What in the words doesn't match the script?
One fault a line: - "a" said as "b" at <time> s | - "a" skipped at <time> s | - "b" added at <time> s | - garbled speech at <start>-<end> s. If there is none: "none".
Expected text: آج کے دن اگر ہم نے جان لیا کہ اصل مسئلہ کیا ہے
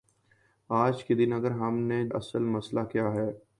- "جان لیا کہ" skipped at 2.0 s